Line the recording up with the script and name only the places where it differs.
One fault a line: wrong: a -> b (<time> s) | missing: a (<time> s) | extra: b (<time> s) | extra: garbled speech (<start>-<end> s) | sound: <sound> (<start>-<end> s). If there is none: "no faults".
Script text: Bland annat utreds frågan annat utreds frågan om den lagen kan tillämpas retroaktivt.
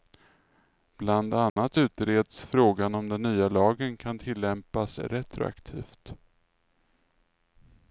sound: dropout (1.5-1.6 s)
missing: annat utreds frågan (2.9 s)
extra: nya (3.2 s)